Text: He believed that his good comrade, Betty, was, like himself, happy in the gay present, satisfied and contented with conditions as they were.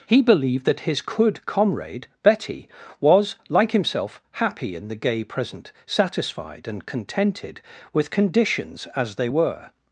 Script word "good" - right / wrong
wrong